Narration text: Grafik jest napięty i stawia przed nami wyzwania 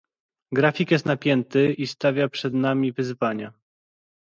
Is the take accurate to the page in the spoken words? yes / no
yes